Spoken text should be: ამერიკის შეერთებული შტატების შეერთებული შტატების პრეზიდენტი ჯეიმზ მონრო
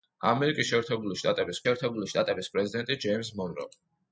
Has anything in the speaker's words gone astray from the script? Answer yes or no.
no